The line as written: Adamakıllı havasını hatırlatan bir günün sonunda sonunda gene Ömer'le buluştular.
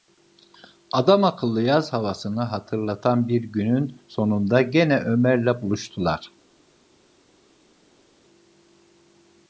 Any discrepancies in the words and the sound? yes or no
yes